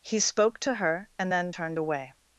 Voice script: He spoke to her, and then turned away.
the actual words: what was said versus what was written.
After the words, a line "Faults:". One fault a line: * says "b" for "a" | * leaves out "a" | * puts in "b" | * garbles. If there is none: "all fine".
He spoke to her, and then turned away.
Faults:
all fine